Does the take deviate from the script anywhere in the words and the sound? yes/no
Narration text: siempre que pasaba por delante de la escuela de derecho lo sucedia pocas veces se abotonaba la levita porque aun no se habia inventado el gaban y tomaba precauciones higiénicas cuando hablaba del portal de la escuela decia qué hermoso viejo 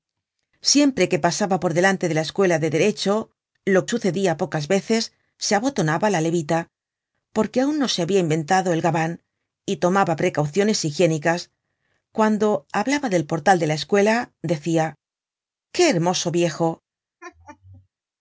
yes